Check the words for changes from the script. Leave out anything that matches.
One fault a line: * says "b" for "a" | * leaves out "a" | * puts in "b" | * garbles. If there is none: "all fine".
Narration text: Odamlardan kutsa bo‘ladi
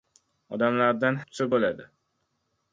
all fine